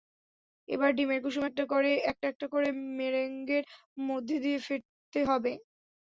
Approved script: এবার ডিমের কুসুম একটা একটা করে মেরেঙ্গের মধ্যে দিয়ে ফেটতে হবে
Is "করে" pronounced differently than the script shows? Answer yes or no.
no